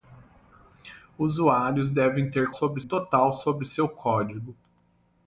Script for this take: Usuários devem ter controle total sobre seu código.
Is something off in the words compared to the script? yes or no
yes